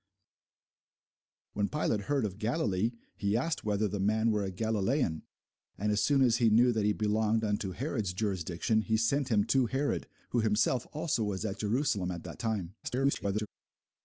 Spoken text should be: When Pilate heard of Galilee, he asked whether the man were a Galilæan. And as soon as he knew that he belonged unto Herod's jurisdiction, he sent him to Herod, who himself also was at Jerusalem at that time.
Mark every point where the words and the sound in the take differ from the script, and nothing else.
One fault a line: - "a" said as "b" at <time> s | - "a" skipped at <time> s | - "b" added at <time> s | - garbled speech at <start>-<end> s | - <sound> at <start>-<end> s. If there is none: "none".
- garbled speech at 12.8-13.5 s